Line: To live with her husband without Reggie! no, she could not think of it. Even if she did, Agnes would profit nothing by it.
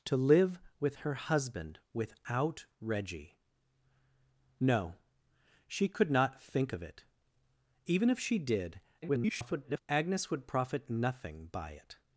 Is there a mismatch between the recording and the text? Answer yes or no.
yes